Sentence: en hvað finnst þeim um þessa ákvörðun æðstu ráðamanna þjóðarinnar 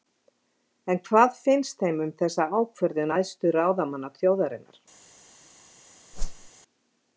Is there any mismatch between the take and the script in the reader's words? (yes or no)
no